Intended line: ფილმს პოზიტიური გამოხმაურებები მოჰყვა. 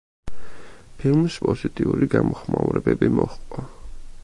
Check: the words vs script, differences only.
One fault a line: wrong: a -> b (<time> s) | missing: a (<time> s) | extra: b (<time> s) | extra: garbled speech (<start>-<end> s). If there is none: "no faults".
no faults